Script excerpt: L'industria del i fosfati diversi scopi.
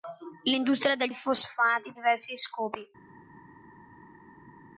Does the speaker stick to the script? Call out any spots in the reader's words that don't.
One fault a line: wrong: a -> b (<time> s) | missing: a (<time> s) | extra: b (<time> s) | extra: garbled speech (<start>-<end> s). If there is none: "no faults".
no faults